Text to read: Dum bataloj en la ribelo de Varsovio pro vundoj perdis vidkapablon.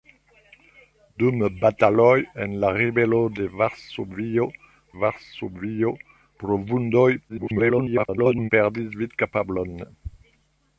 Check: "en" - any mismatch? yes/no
no